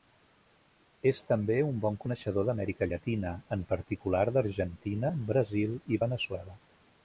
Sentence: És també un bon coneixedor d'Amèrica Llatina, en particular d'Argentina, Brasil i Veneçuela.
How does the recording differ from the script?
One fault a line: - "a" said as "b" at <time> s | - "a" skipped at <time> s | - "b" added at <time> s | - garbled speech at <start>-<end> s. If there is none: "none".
none